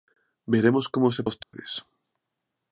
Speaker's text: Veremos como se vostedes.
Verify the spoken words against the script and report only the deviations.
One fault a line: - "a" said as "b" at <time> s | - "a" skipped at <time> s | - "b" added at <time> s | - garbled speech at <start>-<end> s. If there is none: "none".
none